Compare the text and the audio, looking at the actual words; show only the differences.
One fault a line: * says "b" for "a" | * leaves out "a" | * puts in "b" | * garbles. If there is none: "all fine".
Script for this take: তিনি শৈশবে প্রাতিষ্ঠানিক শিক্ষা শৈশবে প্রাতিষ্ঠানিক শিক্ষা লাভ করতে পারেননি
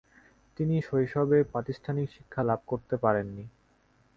* leaves out "শৈশবে প্রাতিষ্ঠানিক শিক্ষা"